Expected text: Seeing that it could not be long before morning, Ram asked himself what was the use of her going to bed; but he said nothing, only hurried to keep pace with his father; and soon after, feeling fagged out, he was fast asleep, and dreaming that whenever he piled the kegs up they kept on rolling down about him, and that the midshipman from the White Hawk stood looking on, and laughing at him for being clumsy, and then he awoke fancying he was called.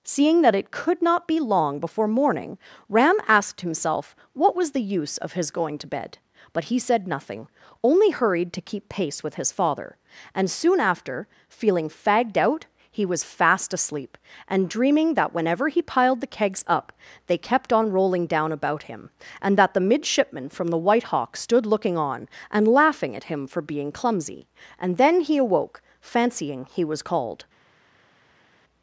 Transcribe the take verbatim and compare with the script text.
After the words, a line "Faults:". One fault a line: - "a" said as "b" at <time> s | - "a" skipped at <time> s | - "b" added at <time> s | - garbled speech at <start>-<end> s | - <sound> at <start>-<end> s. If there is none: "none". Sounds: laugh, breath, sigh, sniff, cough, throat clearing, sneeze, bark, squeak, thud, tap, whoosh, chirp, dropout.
Seeing that it could not be long before morning, Ram asked himself what was the use of his going to bed; but he said nothing, only hurried to keep pace with his father; and soon after, feeling fagged out, he was fast asleep, and dreaming that whenever he piled the kegs up they kept on rolling down about him, and that the midshipman from the White Hawk stood looking on, and laughing at him for being clumsy, and then he awoke fancying he was called.
Faults:
- "her" said as "his" at 5.3 s